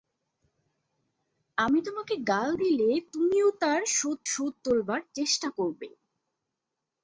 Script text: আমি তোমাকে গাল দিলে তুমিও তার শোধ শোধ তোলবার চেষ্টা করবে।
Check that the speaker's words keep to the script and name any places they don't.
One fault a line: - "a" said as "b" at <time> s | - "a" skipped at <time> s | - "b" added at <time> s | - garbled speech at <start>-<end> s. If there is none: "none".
none